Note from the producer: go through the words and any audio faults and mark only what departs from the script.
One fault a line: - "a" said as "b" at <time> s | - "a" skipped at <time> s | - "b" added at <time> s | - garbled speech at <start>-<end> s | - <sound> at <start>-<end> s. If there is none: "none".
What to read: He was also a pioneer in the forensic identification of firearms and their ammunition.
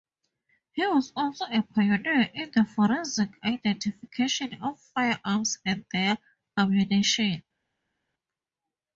none